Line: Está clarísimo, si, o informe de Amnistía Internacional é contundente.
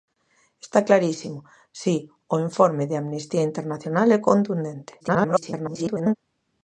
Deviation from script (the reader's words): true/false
true